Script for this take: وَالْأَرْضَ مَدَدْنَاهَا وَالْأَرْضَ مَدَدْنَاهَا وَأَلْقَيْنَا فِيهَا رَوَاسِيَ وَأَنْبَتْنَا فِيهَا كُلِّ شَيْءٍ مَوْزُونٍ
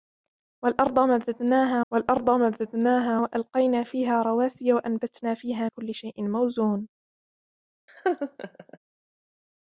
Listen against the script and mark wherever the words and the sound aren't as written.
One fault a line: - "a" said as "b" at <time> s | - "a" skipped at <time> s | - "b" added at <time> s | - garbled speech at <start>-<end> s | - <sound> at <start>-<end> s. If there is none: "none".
- laugh at 7.9-8.8 s